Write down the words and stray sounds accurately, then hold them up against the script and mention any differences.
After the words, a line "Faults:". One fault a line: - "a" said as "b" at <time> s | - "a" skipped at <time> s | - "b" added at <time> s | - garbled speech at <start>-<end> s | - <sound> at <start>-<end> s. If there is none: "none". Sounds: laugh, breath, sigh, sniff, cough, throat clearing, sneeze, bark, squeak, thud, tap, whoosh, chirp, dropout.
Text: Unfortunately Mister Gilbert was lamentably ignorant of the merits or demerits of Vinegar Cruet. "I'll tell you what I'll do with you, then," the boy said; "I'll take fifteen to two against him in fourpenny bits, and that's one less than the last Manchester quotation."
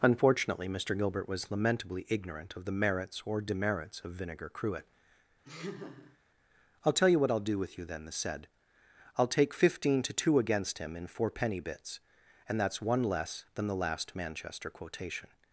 Unfortunately Mister Gilbert was lamentably ignorant of the merits or demerits of Vinegar Cruet. "I'll tell you what I'll do with you, then," the said; "I'll take fifteen to two against him in fourpenny bits, and that's one less than the last Manchester quotation."
Faults:
- laugh at 5.4-6.2 s
- "boy" skipped at 8.1 s